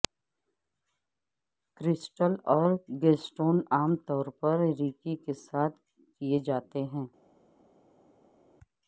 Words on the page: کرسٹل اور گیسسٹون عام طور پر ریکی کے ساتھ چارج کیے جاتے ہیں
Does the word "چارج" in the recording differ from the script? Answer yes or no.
yes